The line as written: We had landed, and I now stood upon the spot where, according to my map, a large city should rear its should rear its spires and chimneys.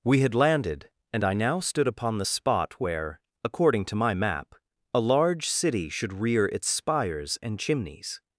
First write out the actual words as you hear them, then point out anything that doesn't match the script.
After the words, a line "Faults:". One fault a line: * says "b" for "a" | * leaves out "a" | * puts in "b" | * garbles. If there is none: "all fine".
We had landed, and I now stood upon the spot where, according to my map, a large city should rear its spires and chimneys.
Faults:
* leaves out "should rear its"